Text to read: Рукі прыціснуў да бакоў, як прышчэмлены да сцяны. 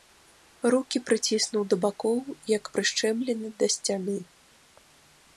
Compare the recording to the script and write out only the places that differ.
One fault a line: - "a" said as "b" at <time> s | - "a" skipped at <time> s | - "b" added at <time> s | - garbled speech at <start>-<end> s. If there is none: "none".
none